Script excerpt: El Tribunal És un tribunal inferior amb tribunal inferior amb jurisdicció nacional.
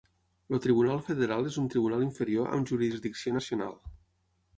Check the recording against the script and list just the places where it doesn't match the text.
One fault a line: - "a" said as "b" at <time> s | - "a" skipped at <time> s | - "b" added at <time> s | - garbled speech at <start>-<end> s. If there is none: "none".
- "Federal" added at 1.1 s
- "tribunal inferior amb" skipped at 2.7 s